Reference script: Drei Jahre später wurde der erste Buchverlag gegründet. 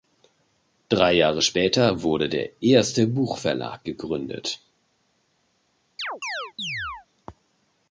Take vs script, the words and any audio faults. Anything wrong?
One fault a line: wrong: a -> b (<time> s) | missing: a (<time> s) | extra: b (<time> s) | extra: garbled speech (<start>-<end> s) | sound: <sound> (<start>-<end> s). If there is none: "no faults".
sound: chirp (6.0-7.1 s)